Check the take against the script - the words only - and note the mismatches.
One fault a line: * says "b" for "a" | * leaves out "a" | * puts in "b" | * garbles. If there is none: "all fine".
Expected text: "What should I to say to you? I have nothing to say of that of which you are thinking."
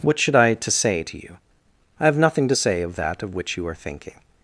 all fine